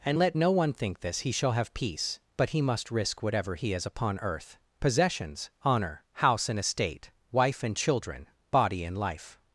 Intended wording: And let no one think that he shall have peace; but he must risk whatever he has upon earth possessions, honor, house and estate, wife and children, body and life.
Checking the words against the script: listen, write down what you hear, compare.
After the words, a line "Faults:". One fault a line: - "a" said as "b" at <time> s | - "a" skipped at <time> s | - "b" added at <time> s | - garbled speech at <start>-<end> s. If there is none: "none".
And let no one think this he shall have peace; but he must risk whatever he has upon earth possessions, honor, house and estate, wife and children, body and life.
Faults:
- "that" said as "this" at 1.0 s